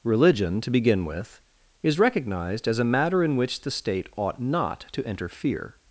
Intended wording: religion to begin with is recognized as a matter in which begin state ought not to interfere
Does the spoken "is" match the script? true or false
true